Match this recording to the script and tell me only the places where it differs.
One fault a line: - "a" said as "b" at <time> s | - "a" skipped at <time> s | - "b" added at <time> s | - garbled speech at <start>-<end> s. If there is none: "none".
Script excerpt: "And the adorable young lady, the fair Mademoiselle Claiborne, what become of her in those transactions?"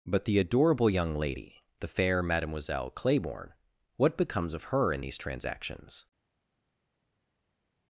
- "And" said as "But" at 0.1 s
- "become" said as "becomes" at 4.2 s
- "those" said as "these" at 5.0 s